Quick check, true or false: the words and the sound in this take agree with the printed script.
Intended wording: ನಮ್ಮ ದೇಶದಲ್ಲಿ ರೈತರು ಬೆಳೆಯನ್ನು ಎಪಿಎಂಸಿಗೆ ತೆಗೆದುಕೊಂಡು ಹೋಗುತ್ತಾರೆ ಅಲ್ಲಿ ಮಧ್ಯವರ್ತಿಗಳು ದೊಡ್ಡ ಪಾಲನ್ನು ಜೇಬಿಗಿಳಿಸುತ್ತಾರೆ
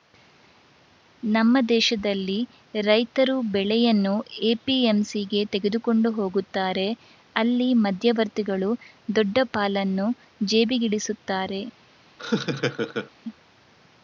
false